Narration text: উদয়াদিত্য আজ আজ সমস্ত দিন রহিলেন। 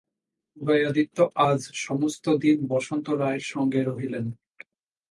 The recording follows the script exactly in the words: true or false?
false